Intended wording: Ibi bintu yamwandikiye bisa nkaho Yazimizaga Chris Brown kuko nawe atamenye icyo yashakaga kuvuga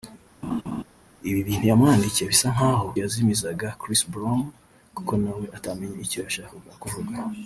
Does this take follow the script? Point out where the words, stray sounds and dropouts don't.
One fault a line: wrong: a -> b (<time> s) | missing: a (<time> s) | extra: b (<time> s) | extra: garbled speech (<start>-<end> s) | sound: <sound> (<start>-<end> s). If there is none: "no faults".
sound: laugh (0.4-0.8 s)